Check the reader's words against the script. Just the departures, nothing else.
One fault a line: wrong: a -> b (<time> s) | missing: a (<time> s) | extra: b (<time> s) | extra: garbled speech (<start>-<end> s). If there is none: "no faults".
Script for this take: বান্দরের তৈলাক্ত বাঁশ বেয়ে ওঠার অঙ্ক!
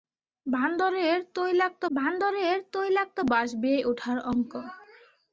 extra: বান্দরের তৈলাক্ত (1.9 s)